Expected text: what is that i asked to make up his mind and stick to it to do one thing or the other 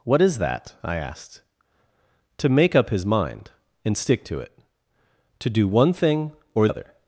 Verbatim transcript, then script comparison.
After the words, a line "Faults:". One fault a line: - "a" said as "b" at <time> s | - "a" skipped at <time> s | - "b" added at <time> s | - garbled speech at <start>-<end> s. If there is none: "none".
what is that i asked to make up his mind and stick to it to do one thing or other
Faults:
- "the" skipped at 6.7 s